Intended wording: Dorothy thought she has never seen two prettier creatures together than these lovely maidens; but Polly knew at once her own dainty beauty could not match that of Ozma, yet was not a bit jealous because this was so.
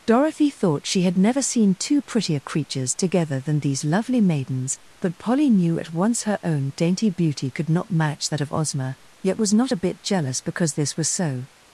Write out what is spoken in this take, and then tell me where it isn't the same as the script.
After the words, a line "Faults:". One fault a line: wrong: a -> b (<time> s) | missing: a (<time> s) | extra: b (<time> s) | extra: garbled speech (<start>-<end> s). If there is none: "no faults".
Dorothy thought she had never seen two prettier creatures together than these lovely maidens; but Polly knew at once her own dainty beauty could not match that of Ozma, yet was not a bit jealous because this was so.
Faults:
wrong: has -> had (1.0 s)